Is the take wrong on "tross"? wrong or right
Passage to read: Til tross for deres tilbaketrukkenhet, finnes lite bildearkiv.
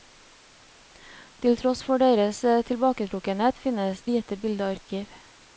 right